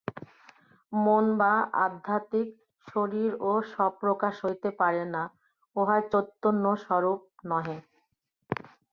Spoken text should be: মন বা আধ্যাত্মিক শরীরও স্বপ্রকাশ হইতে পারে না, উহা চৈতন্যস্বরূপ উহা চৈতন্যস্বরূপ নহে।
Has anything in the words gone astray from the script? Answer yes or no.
yes